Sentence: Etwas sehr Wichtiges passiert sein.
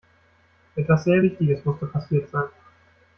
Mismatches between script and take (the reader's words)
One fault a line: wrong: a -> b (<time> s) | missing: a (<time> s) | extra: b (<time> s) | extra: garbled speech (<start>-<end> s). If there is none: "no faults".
extra: musste (1.6 s)